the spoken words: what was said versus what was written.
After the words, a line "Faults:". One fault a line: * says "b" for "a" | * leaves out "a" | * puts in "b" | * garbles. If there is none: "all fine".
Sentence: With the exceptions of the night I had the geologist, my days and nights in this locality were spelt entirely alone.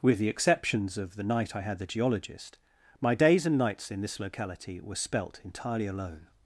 With the exceptions of the night I had the geologist, my days and nights in this locality were spelt entirely alone.
Faults:
all fine